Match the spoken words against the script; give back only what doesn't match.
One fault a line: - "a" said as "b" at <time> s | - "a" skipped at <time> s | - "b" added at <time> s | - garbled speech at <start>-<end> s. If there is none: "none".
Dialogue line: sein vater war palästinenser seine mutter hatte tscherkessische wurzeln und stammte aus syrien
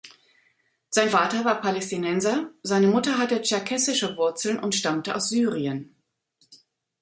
none